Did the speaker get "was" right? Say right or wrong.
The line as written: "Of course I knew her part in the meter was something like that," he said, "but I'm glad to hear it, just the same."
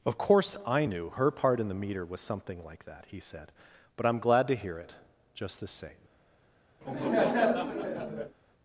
right